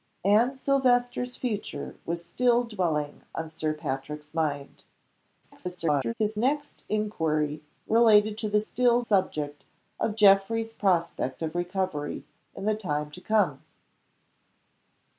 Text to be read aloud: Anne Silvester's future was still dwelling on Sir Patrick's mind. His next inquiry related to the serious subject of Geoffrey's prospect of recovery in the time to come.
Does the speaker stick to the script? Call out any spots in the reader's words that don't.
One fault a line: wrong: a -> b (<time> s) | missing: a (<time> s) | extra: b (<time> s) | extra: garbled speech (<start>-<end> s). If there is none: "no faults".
extra: garbled speech (5.4-6.1 s)
wrong: serious -> still (8.6 s)